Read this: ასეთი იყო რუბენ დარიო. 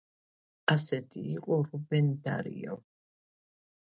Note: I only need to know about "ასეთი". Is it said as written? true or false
true